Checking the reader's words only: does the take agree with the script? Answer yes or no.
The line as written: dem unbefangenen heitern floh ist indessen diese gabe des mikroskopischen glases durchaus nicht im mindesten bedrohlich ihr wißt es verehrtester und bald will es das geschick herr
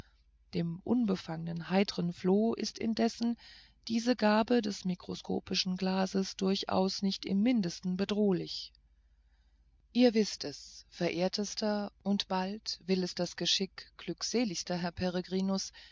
no